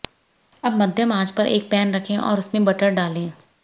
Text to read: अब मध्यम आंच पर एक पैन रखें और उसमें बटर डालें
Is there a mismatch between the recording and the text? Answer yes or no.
no